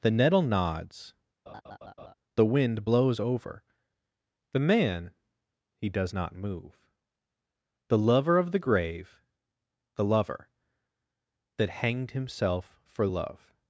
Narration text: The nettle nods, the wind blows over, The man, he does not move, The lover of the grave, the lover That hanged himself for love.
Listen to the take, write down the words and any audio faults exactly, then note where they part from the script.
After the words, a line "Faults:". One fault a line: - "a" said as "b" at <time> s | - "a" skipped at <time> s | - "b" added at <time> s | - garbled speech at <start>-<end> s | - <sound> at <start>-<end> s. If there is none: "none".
The nettle nods, the wind blows over, The man, he does not move, The lover of the grave, the lover That hanged himself for love.
Faults:
- laugh at 1.5-2.1 s